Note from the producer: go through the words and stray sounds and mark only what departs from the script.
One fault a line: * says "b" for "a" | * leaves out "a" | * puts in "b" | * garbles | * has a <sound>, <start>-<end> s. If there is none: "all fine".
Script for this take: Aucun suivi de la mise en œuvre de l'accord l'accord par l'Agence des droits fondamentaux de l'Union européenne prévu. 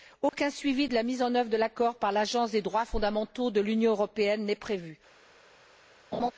* has a dropout, 0.3-0.3 s
* leaves out "l'accord"
* puts in "n'est"
* has a laugh, 6.1-6.3 s